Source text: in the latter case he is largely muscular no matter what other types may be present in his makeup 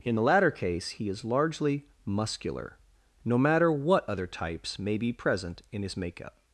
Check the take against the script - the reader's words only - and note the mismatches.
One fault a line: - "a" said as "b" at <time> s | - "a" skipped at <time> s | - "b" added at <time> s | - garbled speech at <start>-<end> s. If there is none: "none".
none